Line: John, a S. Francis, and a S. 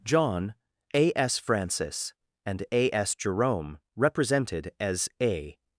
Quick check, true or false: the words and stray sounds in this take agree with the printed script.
false